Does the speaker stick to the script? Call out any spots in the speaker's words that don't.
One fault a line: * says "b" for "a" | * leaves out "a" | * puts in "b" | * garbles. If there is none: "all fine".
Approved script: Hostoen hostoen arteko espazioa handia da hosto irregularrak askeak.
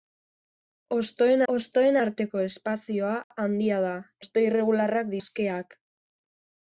all fine